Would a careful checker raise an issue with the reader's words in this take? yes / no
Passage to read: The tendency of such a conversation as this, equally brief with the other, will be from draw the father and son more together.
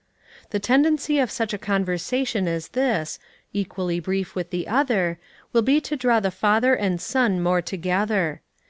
yes